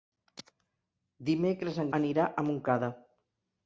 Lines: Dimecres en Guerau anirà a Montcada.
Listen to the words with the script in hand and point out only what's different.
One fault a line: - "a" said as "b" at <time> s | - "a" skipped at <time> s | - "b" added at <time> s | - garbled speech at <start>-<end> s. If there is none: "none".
- "Guerau" skipped at 1.9 s